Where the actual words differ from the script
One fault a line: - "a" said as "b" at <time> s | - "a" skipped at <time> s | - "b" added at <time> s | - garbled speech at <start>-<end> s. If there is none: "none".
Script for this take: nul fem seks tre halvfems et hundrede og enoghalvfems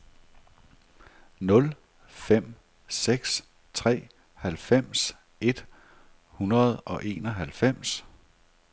none